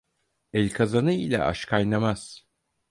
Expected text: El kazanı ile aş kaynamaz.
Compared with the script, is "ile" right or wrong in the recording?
right